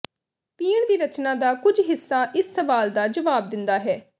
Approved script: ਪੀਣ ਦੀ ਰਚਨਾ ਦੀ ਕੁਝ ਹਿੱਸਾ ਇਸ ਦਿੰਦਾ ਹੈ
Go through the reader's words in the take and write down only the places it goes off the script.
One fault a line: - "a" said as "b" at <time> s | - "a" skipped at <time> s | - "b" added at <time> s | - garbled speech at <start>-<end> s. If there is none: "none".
- "ਦੀ" said as "ਦਾ" at 1.3 s
- "ਸਵਾਲ ਦਾ ਜਵਾਬ" added at 2.5 s